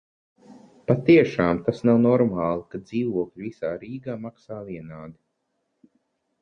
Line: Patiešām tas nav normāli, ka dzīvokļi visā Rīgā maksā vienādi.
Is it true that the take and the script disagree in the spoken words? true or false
false